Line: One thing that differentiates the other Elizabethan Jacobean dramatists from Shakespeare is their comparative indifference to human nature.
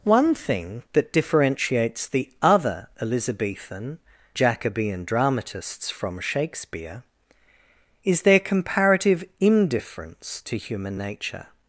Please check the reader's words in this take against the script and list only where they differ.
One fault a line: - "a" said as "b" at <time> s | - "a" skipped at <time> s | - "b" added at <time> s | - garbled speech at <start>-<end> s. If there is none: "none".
none